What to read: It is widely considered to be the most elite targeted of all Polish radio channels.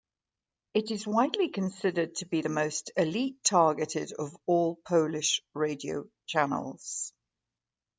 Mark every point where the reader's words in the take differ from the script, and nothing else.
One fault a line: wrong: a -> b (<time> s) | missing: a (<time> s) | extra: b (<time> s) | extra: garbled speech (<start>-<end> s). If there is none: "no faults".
no faults